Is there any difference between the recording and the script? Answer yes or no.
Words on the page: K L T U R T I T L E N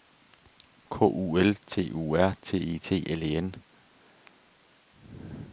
yes